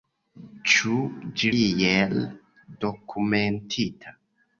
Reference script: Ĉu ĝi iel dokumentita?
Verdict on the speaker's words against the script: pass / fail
pass